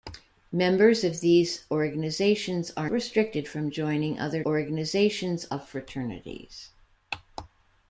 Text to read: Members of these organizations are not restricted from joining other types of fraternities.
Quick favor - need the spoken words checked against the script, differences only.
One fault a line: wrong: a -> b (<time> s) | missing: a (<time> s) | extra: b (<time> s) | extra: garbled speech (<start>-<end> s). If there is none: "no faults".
missing: not (2.9 s)
wrong: types -> organizations (4.4 s)